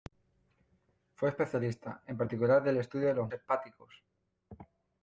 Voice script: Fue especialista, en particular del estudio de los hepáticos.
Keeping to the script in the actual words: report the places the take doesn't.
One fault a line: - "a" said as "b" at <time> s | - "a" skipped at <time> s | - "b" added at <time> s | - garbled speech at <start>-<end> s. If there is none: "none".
none